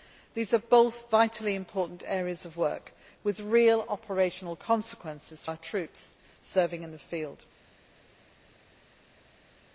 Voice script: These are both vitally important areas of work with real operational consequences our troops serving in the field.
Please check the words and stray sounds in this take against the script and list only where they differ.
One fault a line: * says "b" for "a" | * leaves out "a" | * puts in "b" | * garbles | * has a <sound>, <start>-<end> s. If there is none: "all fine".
all fine